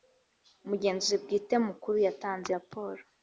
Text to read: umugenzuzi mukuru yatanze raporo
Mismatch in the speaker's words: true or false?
true